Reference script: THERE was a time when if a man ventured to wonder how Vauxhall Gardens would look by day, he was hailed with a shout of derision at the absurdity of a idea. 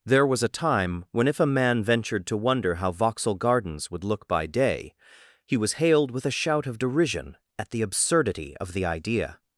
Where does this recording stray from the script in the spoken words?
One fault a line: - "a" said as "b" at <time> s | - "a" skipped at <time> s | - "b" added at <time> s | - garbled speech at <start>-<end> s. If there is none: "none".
- "a" said as "the" at 8.7 s